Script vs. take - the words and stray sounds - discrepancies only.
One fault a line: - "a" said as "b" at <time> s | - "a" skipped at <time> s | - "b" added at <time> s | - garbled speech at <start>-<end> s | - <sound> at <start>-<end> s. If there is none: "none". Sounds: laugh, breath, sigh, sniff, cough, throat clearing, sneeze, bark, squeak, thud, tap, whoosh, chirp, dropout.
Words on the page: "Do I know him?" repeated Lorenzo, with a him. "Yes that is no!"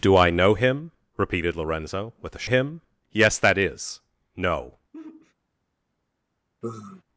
- sigh at 4.9-5.3 s
- sigh at 6.6-7.0 s